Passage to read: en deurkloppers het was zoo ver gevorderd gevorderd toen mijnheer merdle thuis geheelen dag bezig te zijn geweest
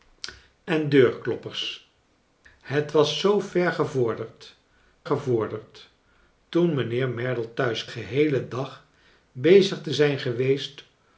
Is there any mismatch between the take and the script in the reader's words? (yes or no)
no